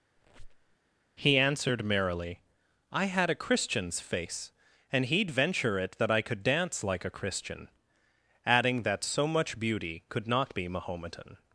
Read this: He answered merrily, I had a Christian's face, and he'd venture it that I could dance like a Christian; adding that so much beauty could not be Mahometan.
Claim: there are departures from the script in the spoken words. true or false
false